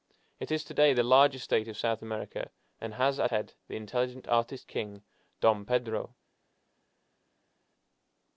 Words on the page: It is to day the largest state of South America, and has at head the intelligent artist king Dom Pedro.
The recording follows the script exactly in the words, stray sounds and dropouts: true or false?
true